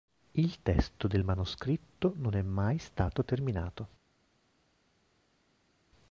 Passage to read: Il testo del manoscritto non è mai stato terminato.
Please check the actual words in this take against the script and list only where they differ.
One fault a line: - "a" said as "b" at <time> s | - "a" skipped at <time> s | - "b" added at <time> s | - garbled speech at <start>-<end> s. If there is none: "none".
none